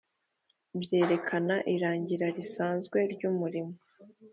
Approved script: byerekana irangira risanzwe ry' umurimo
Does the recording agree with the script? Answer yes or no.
yes